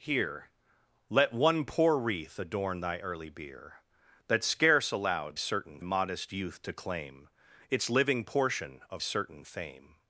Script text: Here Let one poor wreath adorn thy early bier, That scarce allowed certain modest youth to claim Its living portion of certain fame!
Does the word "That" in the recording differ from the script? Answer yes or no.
no